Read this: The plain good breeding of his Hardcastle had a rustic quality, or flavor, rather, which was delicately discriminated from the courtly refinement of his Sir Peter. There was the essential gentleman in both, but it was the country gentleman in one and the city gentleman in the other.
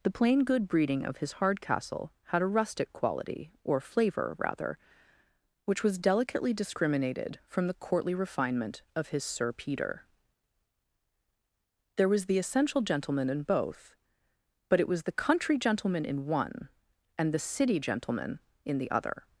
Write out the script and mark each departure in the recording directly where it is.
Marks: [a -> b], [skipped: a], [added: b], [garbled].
The plain good breeding of his Hardcastle had a rustic quality, or flavor, rather, which was delicately discriminated from the courtly refinement of his Sir Peter. There was the essential gentleman in both, but it was the country gentleman in one and the city gentleman in the other.